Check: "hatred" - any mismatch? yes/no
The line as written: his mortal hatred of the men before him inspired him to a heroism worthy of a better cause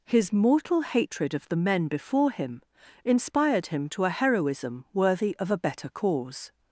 no